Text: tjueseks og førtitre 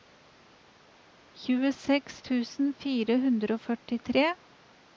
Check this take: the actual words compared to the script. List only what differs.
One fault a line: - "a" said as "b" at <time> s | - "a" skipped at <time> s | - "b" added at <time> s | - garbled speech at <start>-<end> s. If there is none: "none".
- "tusen fire hundre" added at 2.3 s